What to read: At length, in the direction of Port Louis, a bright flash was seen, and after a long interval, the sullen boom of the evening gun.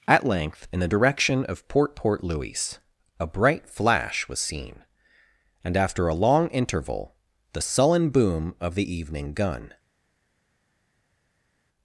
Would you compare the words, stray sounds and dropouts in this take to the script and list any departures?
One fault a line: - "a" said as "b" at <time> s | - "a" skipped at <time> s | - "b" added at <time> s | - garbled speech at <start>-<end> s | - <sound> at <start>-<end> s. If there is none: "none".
- "Port" added at 1.9 s